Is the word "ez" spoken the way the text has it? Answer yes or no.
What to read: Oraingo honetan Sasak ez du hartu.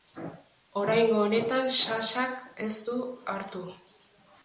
yes